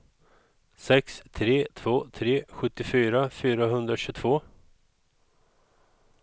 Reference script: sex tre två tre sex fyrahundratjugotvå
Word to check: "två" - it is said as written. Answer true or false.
true